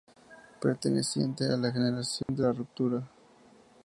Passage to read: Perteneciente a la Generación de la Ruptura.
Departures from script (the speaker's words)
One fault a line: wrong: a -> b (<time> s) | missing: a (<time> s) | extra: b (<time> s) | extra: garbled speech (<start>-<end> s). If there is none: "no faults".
no faults